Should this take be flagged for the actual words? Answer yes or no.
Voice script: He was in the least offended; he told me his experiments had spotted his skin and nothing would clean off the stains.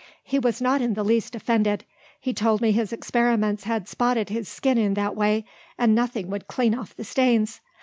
yes